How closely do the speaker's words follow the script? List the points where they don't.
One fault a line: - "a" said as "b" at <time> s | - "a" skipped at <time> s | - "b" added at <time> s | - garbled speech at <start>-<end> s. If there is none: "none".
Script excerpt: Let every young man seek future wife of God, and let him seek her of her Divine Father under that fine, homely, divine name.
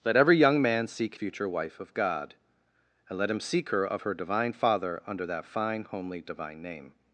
none